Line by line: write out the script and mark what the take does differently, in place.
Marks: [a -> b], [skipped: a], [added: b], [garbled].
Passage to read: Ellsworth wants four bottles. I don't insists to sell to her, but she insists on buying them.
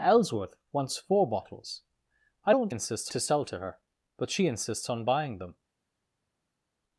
Ellsworth wants four bottles. I don't insists to sell to her, but she insists on buying them.